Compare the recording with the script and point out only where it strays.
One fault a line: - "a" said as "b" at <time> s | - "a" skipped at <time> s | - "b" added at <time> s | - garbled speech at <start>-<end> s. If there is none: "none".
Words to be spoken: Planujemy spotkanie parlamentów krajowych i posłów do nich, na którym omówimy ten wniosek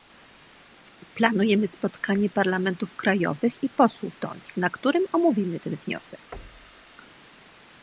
none